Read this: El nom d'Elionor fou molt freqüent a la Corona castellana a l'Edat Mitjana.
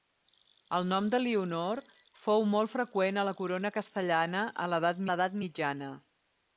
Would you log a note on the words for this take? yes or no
yes